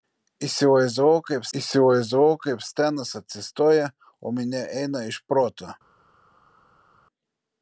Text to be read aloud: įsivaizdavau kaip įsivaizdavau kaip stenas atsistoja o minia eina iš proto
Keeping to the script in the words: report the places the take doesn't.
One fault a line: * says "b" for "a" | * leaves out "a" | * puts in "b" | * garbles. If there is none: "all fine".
all fine